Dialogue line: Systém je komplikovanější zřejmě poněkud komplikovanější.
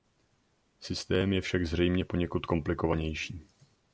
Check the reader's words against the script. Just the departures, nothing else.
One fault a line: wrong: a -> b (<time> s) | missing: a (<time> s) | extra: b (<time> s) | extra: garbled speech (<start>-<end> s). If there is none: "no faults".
wrong: komplikovanější -> však (1.4 s)